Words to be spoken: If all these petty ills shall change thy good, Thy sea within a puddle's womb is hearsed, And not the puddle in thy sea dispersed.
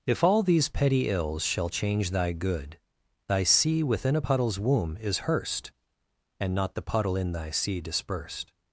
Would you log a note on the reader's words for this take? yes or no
no